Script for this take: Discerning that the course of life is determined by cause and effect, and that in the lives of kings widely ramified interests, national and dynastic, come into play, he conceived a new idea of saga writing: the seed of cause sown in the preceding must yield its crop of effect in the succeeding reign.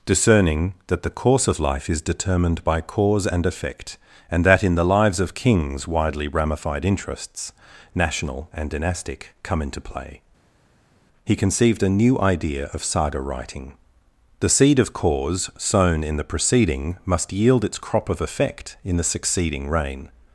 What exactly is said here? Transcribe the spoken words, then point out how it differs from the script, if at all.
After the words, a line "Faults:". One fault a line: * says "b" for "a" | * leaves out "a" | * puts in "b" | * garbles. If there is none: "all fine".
Discerning that the course of life is determined by cause and effect, and that in the lives of kings widely ramified interests, national and dynastic, come into play, he conceived a new idea of saga writing: the seed of cause sown in the preceding must yield its crop of effect in the succeeding reign.
Faults:
all fine